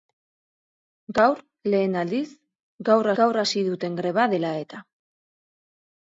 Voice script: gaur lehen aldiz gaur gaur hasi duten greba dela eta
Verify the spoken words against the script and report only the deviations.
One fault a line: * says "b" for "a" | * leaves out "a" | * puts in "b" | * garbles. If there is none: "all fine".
all fine